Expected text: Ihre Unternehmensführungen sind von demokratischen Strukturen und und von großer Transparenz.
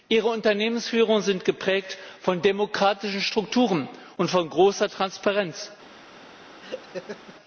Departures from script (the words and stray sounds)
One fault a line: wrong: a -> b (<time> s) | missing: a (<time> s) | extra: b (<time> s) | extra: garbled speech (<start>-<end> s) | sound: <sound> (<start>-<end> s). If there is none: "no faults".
extra: geprägt (1.4 s)
missing: und (4.3 s)
sound: laugh (6.6-7.4 s)